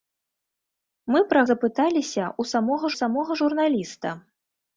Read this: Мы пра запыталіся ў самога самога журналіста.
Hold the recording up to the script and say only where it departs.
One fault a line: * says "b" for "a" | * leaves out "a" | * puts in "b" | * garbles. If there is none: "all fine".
all fine